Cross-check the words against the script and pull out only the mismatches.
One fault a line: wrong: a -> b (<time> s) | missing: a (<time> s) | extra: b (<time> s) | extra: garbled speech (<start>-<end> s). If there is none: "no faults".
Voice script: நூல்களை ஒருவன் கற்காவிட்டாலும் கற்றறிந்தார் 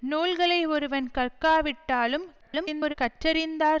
extra: garbled speech (2.4-2.9 s)